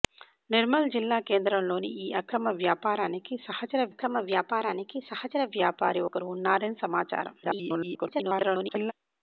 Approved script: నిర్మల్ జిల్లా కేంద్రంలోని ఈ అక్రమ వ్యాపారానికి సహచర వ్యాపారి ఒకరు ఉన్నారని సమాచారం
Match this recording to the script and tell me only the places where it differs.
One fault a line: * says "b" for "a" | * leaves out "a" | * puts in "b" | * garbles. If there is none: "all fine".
* puts in "అక్రమ వ్యాపారానికి సహచర"
* garbles